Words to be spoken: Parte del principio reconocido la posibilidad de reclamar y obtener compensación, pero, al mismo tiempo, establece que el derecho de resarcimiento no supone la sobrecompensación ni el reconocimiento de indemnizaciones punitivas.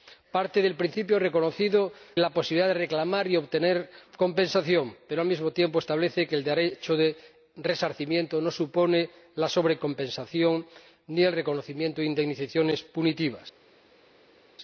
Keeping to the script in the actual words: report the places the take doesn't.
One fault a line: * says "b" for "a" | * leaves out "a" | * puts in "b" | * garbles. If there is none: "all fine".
all fine